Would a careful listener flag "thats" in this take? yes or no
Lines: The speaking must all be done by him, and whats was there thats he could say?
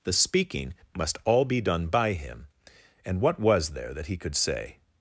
yes